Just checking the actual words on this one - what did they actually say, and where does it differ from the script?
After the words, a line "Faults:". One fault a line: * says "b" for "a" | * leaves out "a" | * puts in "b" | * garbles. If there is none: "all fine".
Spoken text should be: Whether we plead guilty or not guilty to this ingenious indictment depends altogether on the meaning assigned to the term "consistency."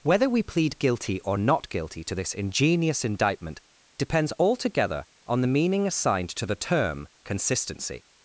Whether we plead guilty or not guilty to this ingenious indictment depends altogether on the meaning assigned to the term "consistency."
Faults:
all fine